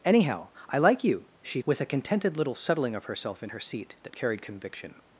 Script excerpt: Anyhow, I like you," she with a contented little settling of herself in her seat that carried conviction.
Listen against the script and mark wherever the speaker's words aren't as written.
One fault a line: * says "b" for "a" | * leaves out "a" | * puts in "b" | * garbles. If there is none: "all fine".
all fine